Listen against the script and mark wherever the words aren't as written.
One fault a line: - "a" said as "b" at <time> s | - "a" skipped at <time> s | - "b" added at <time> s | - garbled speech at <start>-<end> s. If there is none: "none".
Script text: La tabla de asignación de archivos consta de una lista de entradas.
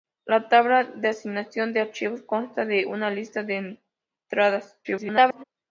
- garbled speech at 4.8-5.4 s